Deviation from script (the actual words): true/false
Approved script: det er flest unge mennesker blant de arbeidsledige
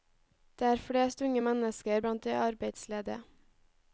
false